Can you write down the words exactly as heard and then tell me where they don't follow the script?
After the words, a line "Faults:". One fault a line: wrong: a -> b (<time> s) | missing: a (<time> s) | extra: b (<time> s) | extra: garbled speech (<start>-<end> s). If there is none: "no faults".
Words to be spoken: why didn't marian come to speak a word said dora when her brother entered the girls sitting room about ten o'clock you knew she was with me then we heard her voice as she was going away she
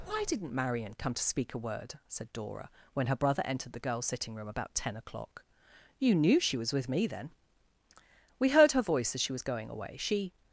why didn't marian come to speak a word said dora when her brother entered the girls sitting room about ten o'clock you knew she was with me then we heard her voice as she was going away she
Faults:
no faults